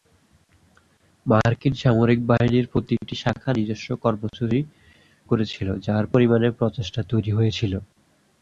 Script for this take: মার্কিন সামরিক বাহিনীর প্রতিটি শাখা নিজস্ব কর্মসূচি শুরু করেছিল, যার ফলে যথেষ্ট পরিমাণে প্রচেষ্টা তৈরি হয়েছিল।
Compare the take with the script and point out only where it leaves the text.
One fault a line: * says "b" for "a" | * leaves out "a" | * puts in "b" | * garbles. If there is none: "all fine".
* leaves out "শুরু"
* leaves out "ফলে যথেষ্ট"